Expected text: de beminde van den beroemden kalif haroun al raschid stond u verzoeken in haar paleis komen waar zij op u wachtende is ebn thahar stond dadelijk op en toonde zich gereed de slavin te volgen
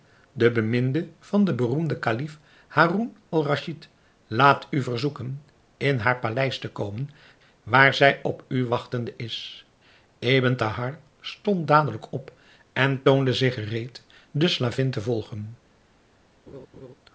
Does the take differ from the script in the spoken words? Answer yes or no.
yes